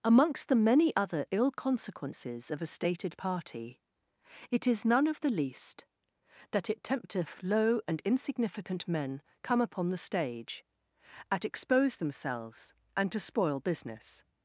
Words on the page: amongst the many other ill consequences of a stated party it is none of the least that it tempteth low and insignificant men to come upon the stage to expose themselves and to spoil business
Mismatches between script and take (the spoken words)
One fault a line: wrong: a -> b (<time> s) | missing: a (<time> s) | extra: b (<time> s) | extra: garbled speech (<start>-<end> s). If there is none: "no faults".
missing: to (9.2 s)
wrong: to -> at (11.3 s)